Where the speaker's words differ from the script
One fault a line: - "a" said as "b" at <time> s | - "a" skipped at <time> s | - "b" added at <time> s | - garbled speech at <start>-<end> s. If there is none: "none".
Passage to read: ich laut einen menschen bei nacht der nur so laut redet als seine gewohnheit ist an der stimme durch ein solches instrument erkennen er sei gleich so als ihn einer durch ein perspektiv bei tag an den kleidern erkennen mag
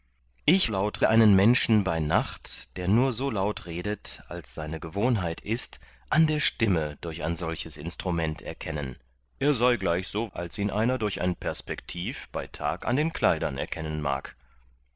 none